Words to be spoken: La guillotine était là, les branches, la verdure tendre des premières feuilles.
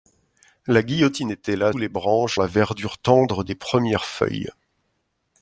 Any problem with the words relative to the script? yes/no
no